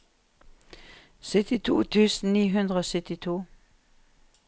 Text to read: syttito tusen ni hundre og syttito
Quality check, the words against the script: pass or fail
pass